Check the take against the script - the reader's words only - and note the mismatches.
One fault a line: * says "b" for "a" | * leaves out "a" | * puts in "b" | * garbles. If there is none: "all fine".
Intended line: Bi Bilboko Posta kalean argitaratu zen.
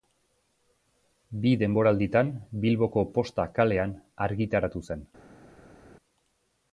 * puts in "denboralditan"